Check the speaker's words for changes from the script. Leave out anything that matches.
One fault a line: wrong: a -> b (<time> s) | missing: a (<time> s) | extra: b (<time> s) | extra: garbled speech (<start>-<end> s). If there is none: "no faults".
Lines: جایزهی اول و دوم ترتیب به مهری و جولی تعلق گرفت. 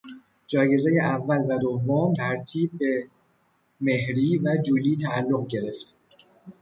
no faults